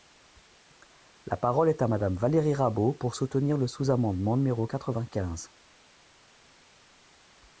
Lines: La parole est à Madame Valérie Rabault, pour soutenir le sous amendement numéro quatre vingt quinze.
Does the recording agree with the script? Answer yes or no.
yes